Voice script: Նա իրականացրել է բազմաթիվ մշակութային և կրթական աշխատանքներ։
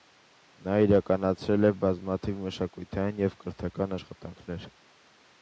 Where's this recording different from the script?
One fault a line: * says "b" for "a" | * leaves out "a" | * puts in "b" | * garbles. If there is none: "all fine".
all fine